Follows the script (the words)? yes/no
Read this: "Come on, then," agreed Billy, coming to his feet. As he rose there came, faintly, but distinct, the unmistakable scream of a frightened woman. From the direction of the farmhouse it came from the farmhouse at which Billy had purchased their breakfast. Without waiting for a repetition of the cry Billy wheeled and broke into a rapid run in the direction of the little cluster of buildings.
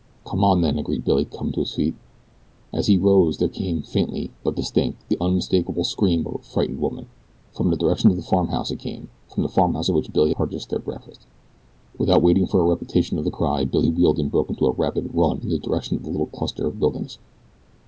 no